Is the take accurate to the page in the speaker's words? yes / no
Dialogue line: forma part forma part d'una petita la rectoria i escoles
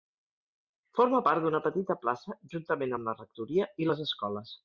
no